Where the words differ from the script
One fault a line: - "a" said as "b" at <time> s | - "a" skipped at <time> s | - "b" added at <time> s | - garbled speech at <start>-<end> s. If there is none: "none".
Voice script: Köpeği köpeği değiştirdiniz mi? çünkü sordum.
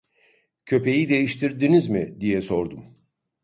- "köpeği" skipped at 1.1 s
- "çünkü" said as "diye" at 2.2 s